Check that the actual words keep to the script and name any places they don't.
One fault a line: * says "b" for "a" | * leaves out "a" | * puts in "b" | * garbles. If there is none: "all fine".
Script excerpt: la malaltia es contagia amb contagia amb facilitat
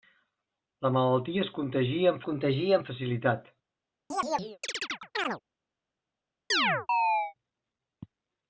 all fine